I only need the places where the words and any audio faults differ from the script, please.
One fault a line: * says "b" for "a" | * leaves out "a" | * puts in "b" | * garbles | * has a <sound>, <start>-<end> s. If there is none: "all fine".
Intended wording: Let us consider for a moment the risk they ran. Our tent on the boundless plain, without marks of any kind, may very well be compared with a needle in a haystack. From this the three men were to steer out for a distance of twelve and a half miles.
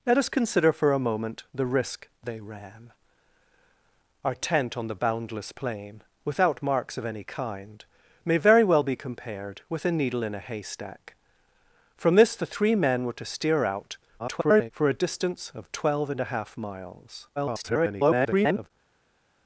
* garbles
* garbles